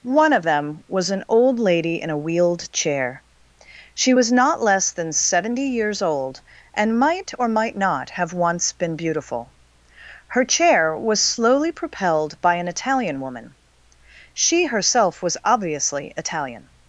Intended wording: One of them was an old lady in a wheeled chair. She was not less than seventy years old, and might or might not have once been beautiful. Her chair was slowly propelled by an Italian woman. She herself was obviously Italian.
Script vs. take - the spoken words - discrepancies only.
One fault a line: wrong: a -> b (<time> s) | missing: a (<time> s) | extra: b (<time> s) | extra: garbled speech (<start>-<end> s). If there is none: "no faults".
no faults